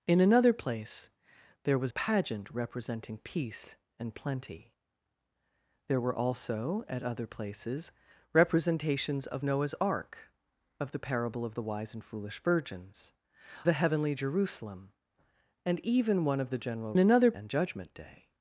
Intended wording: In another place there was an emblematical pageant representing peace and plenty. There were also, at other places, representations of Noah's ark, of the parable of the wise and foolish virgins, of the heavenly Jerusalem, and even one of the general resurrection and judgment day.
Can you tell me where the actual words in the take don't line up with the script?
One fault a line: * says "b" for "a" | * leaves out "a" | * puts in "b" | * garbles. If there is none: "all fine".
* leaves out "an emblematical"
* leaves out "of"
* says "another" for "resurrection"